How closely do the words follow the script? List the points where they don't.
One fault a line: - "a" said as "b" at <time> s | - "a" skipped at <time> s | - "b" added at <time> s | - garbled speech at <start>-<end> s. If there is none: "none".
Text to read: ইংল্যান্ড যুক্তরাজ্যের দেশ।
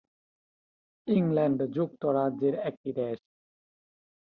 - "একটি" added at 2.7 s